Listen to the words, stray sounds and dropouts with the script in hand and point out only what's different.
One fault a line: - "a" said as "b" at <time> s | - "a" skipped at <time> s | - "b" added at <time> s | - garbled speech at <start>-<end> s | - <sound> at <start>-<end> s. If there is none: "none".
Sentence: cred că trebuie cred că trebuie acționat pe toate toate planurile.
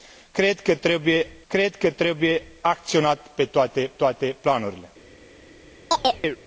- chirp at 5.9-6.4 s